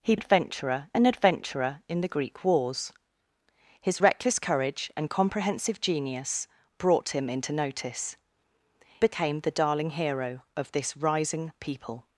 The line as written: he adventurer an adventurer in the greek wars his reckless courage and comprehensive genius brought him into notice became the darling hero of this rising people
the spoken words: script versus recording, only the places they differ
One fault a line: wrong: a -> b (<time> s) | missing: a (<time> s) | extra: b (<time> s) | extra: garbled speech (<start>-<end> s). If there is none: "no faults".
no faults